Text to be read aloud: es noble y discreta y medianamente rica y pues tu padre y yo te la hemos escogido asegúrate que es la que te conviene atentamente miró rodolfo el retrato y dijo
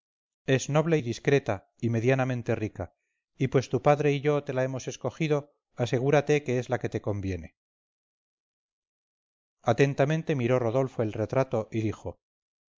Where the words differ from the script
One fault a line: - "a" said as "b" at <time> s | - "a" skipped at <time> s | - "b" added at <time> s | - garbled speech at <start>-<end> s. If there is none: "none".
none